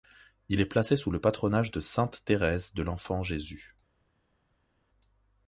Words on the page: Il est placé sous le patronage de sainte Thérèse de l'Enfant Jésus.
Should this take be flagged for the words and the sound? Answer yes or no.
no